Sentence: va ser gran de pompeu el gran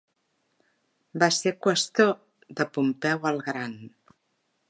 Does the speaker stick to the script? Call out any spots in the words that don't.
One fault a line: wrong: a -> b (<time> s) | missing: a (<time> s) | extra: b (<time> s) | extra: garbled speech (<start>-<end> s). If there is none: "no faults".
wrong: gran -> qüestor (1.6 s)